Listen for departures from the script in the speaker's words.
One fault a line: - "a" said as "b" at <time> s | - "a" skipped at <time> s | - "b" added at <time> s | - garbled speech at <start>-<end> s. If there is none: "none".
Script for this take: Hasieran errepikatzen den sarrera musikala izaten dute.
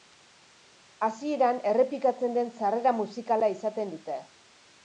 none